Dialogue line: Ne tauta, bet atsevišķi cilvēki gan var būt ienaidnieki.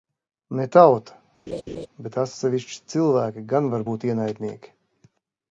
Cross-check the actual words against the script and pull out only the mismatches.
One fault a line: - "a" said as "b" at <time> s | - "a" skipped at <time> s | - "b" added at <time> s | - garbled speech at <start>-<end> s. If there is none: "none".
none